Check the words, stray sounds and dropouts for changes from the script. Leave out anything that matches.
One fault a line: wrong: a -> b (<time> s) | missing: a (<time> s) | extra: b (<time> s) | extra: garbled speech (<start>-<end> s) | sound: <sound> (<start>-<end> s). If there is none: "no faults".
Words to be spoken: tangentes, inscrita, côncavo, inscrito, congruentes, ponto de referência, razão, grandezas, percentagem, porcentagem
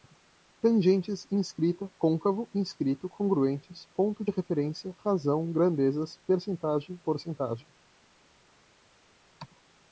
no faults